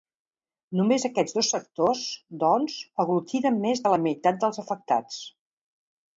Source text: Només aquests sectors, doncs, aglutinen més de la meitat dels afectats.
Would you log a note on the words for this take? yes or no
yes